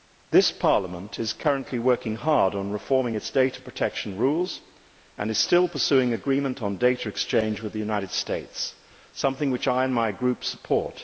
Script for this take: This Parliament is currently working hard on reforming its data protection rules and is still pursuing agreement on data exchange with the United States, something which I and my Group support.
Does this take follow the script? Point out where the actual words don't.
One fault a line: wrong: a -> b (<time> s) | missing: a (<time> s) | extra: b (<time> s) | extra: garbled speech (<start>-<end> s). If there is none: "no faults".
no faults